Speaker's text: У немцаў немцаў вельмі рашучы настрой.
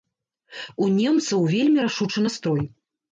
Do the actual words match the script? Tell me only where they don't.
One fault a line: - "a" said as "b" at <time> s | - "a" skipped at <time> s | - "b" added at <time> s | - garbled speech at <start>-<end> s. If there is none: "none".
- "немцаў" skipped at 1.4 s